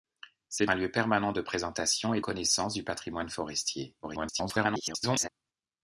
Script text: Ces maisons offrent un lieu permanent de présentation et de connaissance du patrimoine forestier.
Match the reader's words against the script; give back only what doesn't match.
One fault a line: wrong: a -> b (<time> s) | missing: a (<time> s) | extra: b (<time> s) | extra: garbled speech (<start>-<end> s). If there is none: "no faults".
missing: maisons offrent (0.7 s)
missing: de (2.2 s)
extra: garbled speech (4.0-5.3 s)